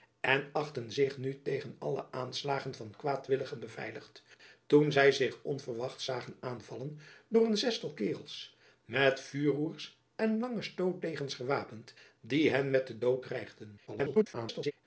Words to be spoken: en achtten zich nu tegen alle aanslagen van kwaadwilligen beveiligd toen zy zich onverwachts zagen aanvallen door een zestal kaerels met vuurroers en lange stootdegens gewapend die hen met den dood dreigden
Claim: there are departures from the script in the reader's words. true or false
true